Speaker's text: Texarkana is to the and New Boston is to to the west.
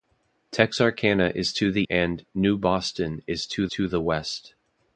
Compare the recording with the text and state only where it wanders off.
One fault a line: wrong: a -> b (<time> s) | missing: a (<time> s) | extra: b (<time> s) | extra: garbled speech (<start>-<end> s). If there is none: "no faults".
no faults